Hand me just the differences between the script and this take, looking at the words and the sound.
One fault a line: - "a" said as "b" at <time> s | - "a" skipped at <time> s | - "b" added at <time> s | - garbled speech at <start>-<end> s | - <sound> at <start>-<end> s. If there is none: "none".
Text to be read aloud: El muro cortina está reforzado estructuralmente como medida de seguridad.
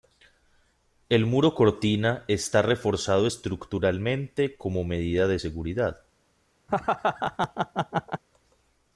- laugh at 6.7-8.2 s